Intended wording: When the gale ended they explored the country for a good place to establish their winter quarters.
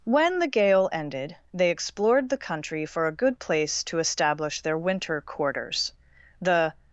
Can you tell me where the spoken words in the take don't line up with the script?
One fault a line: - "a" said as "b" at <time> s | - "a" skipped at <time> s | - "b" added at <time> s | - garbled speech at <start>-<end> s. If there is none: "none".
- "The" added at 6.4 s